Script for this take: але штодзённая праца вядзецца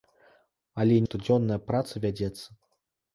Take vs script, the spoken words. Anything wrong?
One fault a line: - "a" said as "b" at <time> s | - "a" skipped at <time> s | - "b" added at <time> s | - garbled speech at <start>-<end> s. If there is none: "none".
none